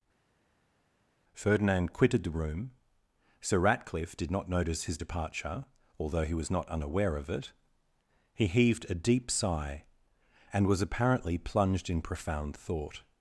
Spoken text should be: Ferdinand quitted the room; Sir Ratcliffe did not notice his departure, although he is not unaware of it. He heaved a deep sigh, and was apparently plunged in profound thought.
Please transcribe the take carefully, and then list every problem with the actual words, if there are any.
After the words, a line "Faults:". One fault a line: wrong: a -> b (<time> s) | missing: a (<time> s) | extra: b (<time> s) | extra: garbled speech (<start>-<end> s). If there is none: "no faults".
Ferdinand quitted the room; Sir Ratcliffe did not notice his departure, although he was not unaware of it. He heaved a deep sigh, and was apparently plunged in profound thought.
Faults:
wrong: is -> was (6.3 s)